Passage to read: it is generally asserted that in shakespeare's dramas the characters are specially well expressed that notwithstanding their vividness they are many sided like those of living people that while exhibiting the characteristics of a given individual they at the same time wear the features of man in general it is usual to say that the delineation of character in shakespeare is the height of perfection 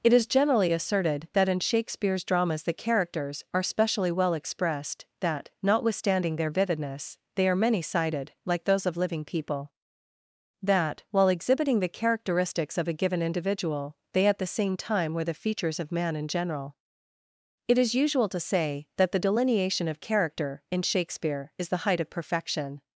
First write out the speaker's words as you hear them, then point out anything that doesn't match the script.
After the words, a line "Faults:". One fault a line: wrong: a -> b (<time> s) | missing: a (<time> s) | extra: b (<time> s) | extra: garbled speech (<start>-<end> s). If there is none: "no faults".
it is generally asserted that in shakespeare's dramas the characters are specially well expressed that notwithstanding their vividness they are many sided like those of living people that while exhibiting the characteristics of a given individual they at the same time were the features of man in general it is usual to say that the delineation of character in shakespeare is the height of perfection
Faults:
wrong: wear -> were (15.1 s)